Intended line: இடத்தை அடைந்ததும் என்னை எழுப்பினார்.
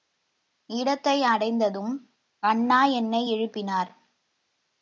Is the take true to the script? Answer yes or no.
no